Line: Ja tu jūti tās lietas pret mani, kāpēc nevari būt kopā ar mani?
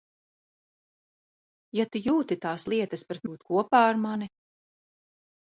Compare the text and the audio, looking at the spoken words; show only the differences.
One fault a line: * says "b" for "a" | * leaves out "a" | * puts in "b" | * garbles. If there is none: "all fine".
* leaves out "mani kāpēc nevari"